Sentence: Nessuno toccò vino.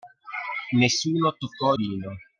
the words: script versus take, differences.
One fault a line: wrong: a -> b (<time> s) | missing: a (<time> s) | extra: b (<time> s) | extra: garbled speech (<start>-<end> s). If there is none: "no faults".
no faults